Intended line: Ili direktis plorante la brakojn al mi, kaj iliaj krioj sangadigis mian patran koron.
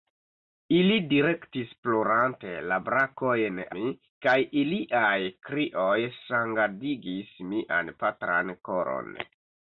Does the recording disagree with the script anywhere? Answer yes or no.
yes